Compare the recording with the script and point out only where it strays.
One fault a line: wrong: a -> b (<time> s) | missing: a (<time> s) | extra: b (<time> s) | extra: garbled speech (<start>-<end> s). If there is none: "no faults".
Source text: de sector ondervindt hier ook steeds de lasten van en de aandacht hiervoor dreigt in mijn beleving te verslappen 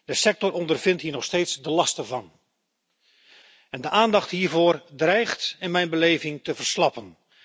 wrong: ook -> nog (1.1 s)